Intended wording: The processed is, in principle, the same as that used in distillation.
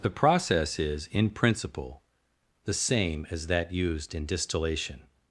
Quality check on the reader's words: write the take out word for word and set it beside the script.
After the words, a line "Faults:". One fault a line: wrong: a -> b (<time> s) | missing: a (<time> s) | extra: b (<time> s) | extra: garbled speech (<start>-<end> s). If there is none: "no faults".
The process is, in principle, the same as that used in distillation.
Faults:
wrong: processed -> process (0.1 s)